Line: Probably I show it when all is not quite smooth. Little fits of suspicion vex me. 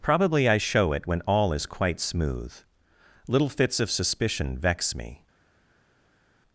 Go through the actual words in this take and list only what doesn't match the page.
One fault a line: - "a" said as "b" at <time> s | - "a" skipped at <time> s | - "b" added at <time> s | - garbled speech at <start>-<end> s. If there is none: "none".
- "not" skipped at 1.6 s